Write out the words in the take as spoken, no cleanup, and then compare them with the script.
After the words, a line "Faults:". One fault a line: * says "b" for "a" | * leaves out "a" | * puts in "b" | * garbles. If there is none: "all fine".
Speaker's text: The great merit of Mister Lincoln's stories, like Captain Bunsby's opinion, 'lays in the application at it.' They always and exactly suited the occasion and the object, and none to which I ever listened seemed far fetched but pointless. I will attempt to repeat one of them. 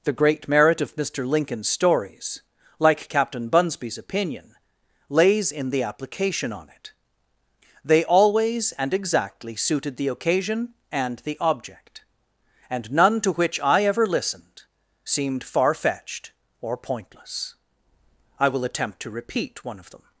The great merit of Mister Lincoln's stories, like Captain Bunsby's opinion, 'lays in the application on it.' They always and exactly suited the occasion and the object, and none to which I ever listened seemed far fetched or pointless. I will attempt to repeat one of them.
Faults:
* says "on" for "at"
* says "or" for "but"